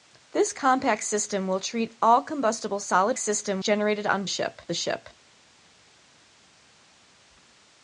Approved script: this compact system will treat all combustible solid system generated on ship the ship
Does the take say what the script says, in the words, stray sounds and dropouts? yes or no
yes